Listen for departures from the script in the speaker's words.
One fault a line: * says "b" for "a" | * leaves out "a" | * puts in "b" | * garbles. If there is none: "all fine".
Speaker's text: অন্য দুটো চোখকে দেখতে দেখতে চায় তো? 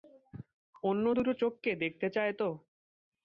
* leaves out "দেখতে"